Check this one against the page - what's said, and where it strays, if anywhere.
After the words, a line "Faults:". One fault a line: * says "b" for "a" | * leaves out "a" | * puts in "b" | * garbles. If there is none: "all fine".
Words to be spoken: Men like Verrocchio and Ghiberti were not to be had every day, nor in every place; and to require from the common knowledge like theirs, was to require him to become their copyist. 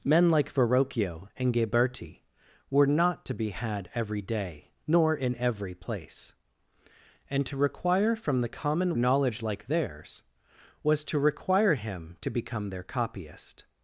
Men like Verrocchio and Ghiberti were not to be had every day, nor in every place; and to require from the common knowledge like theirs, was to require him to become their copyist.
Faults:
all fine